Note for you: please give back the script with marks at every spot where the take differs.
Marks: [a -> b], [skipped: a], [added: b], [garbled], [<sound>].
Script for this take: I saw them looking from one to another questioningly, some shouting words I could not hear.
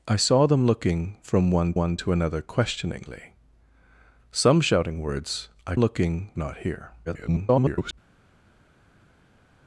I saw them looking from one [added: one] to another questioningly, some shouting words I [could -> looking] not hear. [garbled]